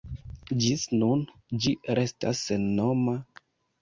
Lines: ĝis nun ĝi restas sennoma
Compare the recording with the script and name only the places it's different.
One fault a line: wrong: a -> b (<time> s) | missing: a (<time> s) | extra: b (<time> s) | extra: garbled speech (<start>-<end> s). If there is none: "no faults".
no faults